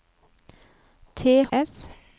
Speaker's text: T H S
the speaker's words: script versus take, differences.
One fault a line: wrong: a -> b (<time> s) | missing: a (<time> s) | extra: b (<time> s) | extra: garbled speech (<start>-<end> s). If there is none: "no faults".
no faults